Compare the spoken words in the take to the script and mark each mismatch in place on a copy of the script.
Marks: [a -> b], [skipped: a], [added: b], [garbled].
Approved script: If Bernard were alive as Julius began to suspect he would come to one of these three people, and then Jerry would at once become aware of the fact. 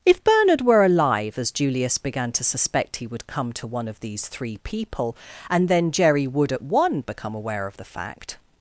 If Bernard were alive as Julius began to suspect he would come to one of these three people, and then Jerry would at [once -> one] become aware of the fact.